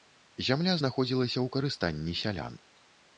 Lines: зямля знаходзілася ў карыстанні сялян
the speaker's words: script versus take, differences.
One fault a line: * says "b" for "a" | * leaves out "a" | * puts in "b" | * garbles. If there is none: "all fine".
all fine